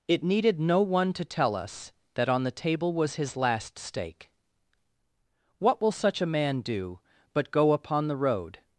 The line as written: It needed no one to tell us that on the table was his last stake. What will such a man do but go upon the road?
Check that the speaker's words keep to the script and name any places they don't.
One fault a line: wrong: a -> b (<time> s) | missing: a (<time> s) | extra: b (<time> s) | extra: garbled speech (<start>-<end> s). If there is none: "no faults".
no faults